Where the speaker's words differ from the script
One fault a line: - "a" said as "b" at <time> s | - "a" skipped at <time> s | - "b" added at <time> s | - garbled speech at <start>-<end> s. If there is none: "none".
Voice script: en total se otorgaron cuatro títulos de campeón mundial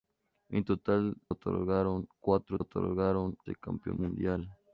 - "se" skipped at 1.1 s
- "títulos" said as "otorgaron" at 2.6 s